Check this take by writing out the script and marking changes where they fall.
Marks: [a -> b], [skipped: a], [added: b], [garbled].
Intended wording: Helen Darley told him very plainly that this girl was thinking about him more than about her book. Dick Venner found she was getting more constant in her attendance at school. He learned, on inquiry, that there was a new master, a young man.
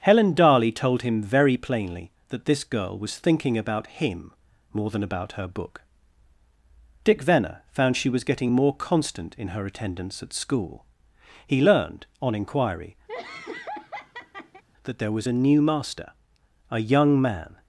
Helen Darley told him very plainly that this girl was thinking about him more than about her book. Dick Venner found she was getting more constant in her attendance at school. He learned, on inquiry, that there was a new master, a young man.